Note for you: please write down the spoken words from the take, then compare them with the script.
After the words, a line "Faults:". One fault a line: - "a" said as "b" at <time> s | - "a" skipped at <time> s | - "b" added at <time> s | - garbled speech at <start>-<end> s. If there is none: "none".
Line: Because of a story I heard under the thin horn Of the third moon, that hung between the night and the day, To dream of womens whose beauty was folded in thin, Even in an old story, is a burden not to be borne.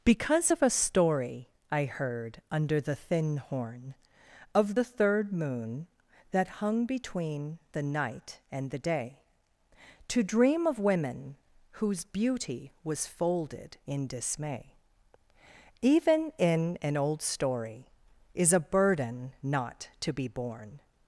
Because of a story I heard under the thin horn Of the third moon, that hung between the night and the day, To dream of women whose beauty was folded in dismay, Even in an old story, is a burden not to be borne.
Faults:
- "womens" said as "women" at 10.8 s
- "thin" said as "dismay" at 14.1 s